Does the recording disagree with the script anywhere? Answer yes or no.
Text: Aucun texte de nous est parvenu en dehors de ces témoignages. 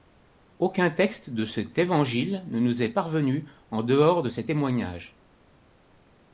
yes